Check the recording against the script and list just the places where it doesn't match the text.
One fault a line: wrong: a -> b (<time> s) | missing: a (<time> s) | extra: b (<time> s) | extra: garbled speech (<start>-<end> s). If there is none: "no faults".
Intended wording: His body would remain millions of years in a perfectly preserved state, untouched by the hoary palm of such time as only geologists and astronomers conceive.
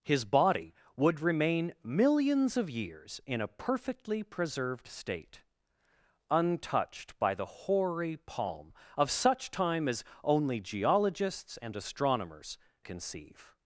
no faults